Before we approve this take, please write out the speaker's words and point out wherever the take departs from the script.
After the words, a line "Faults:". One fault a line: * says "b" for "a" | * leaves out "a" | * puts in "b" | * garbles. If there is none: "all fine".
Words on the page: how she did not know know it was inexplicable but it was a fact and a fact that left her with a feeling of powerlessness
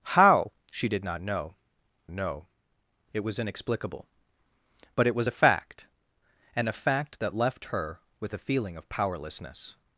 how she did not know know it was inexplicable but it was a fact and a fact that left her with a feeling of powerlessness
Faults:
all fine